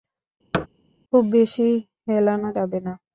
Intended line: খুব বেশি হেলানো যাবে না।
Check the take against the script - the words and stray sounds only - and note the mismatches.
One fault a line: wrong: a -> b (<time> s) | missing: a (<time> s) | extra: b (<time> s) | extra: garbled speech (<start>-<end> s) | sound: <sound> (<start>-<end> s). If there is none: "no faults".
sound: thud (0.5-0.7 s)